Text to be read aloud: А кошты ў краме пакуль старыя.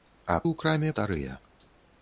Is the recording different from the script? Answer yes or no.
yes